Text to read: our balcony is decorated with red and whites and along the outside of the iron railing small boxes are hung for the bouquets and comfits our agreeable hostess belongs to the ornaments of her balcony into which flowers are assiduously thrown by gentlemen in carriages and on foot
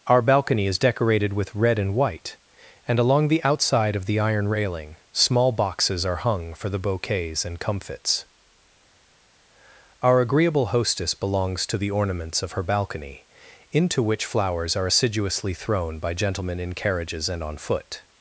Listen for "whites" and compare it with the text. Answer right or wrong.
wrong